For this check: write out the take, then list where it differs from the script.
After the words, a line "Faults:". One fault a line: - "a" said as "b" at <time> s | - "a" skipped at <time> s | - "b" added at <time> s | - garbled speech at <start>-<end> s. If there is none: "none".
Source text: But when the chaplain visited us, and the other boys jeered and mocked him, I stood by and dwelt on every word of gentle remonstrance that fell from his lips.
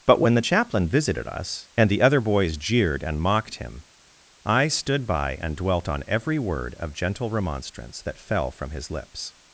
But when the chaplain visited us, and the other boys jeered and mocked him, I stood by and dwelt on every word of gentle remonstrance that fell from his lips.
Faults:
none